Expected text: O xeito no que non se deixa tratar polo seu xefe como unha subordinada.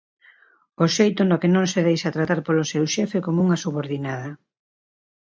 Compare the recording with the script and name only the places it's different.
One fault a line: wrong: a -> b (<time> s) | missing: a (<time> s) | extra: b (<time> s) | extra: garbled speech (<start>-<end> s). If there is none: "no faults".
no faults